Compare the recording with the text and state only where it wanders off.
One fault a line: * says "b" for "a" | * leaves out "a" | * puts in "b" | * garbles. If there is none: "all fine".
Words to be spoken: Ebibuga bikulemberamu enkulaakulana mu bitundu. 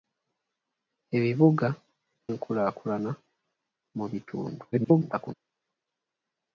* leaves out "bikulemberamu"
* garbles